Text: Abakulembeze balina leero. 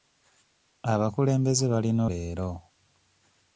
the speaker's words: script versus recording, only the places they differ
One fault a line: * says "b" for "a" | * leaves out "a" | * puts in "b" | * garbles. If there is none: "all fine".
all fine